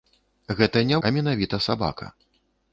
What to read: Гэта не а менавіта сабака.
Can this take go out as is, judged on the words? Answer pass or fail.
pass